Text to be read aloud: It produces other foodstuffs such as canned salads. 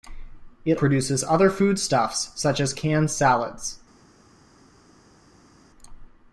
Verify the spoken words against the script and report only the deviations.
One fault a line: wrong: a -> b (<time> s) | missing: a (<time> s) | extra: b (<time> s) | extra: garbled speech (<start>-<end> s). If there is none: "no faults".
no faults